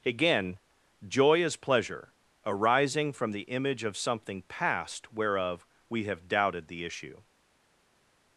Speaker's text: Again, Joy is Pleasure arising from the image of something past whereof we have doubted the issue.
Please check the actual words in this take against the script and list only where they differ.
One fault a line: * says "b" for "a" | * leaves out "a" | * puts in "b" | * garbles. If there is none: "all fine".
all fine